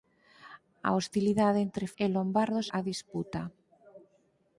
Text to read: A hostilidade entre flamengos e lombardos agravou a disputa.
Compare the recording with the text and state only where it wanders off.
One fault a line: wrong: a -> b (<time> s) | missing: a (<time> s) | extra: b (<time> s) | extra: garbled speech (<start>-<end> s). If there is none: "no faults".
missing: flamengos (1.9 s)
missing: agravou (2.7 s)